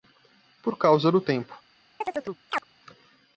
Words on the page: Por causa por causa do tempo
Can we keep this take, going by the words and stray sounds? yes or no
no